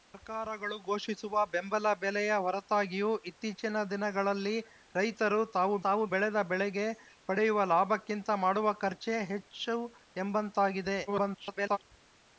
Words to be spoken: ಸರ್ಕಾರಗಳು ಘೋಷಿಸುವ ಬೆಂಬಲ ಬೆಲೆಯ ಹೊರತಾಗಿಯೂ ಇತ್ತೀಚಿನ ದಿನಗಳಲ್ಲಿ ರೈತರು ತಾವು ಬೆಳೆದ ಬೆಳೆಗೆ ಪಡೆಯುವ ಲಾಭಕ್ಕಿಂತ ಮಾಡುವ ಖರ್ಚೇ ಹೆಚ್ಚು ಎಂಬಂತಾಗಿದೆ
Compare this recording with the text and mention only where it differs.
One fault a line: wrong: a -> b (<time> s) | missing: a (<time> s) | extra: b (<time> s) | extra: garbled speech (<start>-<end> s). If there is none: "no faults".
extra: ತಾವು (5.8 s)
extra: garbled speech (11.1-11.8 s)